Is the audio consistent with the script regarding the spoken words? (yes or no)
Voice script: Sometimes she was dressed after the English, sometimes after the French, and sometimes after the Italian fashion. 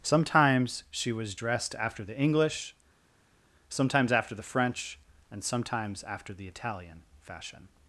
yes